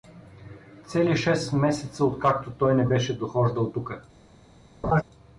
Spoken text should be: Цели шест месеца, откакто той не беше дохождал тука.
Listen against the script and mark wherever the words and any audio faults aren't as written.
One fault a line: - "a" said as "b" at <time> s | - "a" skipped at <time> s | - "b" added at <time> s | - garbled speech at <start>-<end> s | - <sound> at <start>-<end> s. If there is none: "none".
- laugh at 4.8-5.0 s